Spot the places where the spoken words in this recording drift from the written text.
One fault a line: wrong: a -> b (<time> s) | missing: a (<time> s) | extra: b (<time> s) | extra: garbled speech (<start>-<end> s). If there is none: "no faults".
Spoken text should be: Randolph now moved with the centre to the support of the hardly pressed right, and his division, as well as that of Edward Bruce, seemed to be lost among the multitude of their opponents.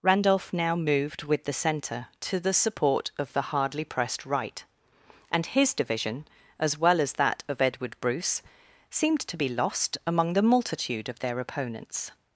no faults